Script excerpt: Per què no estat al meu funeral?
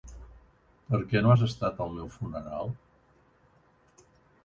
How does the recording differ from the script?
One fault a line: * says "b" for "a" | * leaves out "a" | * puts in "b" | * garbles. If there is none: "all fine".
* puts in "has"